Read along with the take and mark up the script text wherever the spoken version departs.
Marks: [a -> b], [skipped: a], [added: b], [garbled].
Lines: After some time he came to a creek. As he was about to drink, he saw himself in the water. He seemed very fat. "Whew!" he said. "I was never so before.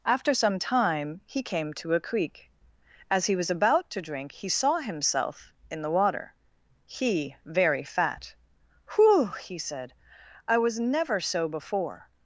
After some time he came to a creek. As he was about to drink, he saw himself in the water. He [skipped: seemed] very fat. "Whew!" he said. "I was never so before.